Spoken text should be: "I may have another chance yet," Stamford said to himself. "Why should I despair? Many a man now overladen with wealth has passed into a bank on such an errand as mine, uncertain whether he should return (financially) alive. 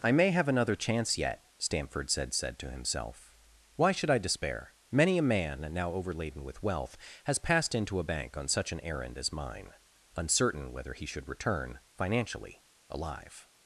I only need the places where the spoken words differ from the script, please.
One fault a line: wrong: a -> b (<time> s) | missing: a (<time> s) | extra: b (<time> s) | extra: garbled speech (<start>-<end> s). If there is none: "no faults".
extra: said (2.3 s)